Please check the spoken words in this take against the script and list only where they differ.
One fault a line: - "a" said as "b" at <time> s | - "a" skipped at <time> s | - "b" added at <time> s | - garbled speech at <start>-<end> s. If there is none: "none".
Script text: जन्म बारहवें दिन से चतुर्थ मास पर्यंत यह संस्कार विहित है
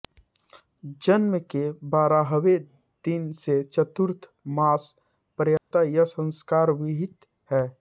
- "के" added at 1.5 s